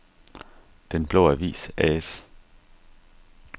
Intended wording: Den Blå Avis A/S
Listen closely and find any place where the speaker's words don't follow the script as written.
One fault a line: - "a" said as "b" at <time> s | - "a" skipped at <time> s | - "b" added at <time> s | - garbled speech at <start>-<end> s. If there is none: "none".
none